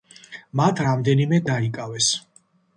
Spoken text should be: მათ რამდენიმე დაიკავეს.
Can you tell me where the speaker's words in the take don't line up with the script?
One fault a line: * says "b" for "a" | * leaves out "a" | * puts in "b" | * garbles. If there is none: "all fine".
all fine